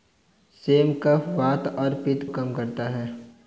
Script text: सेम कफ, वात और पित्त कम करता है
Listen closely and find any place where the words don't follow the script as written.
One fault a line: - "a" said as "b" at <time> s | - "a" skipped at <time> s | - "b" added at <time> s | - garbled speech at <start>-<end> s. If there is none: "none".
none